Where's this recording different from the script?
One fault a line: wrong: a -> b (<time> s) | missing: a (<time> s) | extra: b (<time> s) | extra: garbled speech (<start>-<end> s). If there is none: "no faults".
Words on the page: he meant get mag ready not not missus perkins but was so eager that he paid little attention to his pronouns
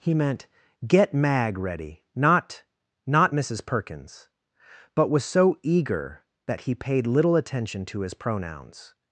no faults